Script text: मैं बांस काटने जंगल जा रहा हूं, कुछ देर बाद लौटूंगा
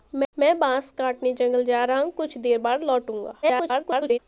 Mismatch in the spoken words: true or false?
true